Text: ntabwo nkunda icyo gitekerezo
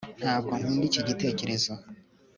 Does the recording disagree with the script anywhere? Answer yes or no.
yes